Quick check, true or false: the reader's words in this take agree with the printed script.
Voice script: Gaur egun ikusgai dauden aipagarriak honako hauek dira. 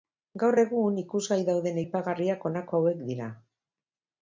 true